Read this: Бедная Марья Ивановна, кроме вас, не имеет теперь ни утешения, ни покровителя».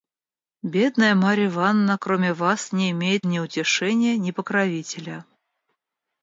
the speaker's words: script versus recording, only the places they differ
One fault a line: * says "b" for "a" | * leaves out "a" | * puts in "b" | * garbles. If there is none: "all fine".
* leaves out "теперь"